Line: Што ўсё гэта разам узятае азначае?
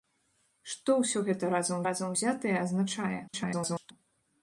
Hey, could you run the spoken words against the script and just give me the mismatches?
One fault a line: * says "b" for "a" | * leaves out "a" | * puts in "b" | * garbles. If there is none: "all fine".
* puts in "разам"
* garbles